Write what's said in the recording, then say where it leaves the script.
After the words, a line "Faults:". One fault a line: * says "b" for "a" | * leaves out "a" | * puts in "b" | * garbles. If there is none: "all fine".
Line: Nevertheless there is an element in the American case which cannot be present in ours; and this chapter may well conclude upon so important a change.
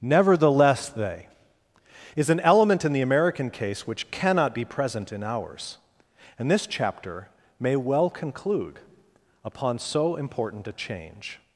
Nevertheless they is an element in the American case which cannot be present in ours; and this chapter may well conclude upon so important a change.
Faults:
* says "they" for "there"